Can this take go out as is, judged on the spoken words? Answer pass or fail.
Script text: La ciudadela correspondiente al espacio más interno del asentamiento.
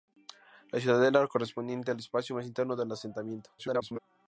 fail